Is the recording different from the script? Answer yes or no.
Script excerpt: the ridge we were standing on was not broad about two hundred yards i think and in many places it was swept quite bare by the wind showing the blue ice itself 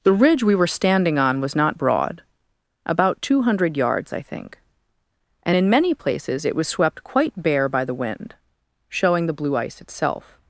no